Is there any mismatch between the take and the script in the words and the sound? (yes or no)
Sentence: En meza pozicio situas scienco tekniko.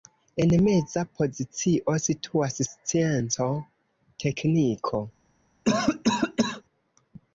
yes